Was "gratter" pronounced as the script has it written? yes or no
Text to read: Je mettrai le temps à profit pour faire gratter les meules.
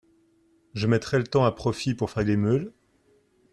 no